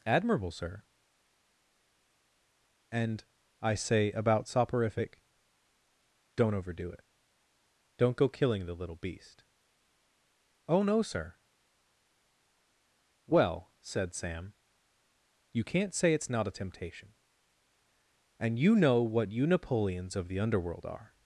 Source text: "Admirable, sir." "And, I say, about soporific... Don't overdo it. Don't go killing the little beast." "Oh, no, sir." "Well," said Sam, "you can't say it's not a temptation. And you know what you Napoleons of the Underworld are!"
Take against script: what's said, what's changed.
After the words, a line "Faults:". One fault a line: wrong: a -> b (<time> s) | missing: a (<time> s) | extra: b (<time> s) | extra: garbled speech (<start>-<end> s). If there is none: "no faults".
"Admirable, sir." "And, I say, about soporific... Don't overdo it. Don't go killing the little beast." "Oh, no, sir." "Well," said Sam, "you can't say it's not a temptation. And you know what you Napoleons of the Underworld are!"
Faults:
no faults